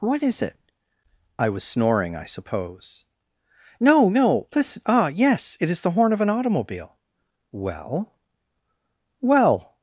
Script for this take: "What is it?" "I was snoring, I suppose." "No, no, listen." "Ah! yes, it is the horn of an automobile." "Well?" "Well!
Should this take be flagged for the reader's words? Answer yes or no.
no